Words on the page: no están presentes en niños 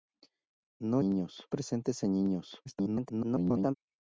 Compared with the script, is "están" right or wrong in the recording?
wrong